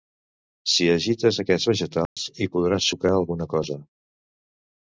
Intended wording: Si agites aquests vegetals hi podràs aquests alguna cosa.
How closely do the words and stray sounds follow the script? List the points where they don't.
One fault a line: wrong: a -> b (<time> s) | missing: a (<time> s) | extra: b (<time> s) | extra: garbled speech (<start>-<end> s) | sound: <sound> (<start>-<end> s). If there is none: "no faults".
sound: dropout (2.1-2.2 s)
wrong: aquests -> sucar (2.9 s)